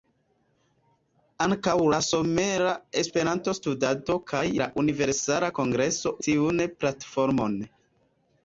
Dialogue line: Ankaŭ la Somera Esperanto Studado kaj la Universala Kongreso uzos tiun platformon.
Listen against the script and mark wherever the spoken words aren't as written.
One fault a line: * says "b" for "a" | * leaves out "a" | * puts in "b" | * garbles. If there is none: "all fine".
* leaves out "uzos"